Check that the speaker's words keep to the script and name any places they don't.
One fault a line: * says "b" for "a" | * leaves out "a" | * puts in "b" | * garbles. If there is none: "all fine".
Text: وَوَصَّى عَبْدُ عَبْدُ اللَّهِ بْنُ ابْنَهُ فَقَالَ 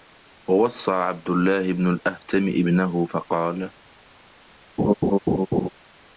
* leaves out "عَبْدُ"
* puts in "الْأَهْتَمِ"